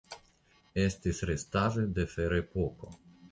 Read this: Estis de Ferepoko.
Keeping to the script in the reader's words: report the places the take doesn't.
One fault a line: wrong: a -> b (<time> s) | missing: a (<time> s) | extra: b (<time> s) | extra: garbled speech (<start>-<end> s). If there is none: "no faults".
extra: restaĵoj (1.3 s)